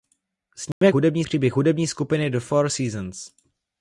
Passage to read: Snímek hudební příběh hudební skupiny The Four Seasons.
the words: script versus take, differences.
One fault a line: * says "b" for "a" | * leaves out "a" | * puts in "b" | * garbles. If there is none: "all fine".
all fine